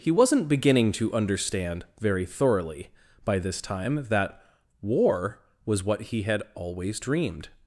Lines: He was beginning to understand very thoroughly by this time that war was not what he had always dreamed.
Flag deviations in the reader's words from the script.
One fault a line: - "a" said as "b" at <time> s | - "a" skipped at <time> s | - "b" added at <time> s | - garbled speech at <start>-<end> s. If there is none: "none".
- "was" said as "wasn't" at 0.1 s
- "not" skipped at 5.8 s